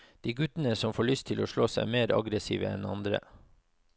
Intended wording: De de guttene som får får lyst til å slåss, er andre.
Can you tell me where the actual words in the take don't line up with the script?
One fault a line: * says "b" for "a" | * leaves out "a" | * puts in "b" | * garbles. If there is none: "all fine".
* leaves out "de"
* leaves out "får"
* puts in "mer aggressive enn"